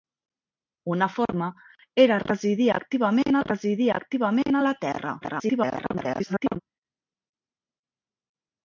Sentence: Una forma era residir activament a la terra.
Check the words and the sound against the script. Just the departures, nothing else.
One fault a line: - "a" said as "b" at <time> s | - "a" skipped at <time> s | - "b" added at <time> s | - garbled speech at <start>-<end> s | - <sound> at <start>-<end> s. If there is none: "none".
- "residir activament" added at 3.4 s
- garbled speech at 5.2-6.6 s